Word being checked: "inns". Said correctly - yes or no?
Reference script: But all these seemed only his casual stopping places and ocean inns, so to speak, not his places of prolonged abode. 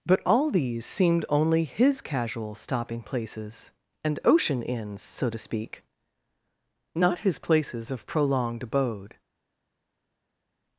yes